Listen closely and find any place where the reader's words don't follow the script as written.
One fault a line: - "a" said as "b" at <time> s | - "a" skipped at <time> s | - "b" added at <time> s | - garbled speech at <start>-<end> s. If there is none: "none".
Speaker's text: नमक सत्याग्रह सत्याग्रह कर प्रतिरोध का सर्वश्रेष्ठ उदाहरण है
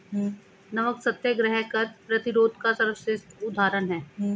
- "सत्याग्रह" skipped at 1.6 s